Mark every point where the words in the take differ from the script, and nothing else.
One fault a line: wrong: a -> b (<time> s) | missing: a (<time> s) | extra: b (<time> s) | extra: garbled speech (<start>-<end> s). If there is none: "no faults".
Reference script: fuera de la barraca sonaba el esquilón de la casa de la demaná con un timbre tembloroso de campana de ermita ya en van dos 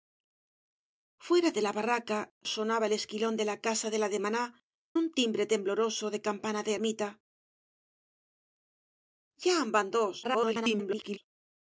missing: con (4.4 s)
extra: garbled speech (10.2-11.2 s)